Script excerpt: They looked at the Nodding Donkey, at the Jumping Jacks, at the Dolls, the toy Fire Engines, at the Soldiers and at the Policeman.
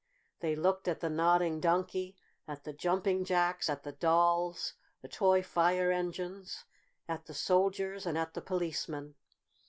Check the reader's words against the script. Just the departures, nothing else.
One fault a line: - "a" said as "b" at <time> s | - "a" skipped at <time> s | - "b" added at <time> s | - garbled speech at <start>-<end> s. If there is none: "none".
none